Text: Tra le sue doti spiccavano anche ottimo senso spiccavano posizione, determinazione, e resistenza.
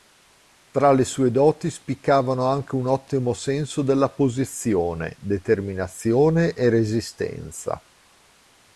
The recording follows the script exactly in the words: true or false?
false